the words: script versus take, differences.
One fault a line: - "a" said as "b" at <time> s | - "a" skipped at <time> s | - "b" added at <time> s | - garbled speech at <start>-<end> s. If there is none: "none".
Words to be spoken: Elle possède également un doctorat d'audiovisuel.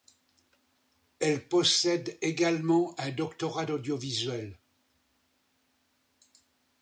none